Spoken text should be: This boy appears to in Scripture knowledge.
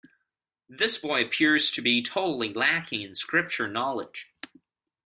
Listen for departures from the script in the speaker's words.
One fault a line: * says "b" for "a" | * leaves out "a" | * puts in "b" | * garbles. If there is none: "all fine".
* puts in "be totally lacking"